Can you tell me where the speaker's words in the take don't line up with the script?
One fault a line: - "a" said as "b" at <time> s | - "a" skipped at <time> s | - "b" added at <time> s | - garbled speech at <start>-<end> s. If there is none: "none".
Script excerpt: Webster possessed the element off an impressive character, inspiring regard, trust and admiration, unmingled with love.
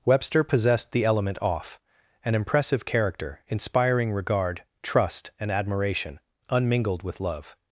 none